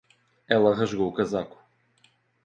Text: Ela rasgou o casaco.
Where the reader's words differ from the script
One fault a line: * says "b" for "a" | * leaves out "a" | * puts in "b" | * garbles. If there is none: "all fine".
all fine